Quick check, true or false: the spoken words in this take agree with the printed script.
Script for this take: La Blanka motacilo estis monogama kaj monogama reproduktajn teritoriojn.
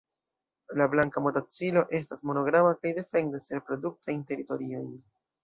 false